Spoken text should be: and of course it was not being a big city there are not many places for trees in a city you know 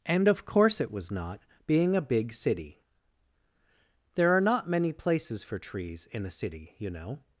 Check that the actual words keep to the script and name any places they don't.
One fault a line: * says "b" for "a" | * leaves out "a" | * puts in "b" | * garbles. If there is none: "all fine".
all fine